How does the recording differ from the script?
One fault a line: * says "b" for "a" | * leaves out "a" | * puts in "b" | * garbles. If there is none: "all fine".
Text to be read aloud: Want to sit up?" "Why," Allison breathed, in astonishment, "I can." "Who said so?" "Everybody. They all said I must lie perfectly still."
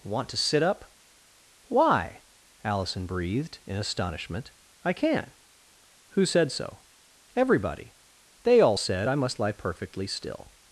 all fine